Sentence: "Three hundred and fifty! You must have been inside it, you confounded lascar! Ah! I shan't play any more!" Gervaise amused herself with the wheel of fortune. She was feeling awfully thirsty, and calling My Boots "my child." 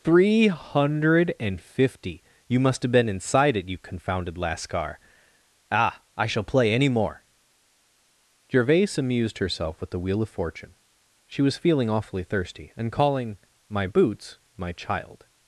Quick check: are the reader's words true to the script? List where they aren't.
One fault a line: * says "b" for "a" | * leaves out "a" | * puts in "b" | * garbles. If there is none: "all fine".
* says "shall" for "shan't"